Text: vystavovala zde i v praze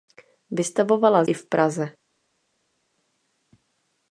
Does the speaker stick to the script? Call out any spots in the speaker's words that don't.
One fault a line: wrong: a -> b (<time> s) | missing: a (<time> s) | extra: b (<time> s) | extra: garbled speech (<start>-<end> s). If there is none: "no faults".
missing: zde (1.2 s)